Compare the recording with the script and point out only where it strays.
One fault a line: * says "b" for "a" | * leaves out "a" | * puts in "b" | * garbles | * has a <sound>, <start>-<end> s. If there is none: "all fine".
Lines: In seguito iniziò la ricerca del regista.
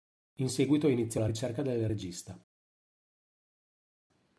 all fine